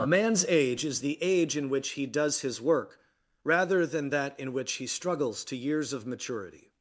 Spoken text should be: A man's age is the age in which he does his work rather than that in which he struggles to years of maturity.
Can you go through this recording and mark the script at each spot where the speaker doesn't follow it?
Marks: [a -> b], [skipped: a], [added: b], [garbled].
A man's age is the age in which he does his work rather than that in which he struggles to years of maturity.